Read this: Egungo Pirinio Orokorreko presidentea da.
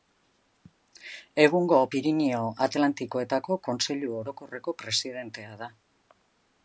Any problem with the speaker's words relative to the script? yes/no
yes